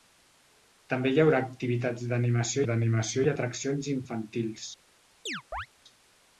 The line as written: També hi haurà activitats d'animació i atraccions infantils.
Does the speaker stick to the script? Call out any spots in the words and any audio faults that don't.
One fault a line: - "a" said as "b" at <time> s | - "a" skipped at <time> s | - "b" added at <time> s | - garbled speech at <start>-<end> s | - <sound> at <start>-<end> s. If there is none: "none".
- "d'animació" added at 2.7 s
- chirp at 5.3-5.7 s